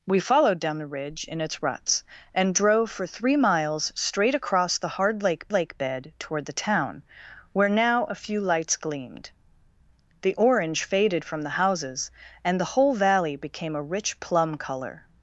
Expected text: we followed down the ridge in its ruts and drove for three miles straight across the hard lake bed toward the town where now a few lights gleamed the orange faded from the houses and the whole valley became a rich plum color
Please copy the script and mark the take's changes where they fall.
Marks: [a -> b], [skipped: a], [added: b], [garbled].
we followed down the ridge in its ruts and drove for three miles straight across the hard lake [added: lake] bed toward the town where now a few lights gleamed the orange faded from the houses and the whole valley became a rich plum color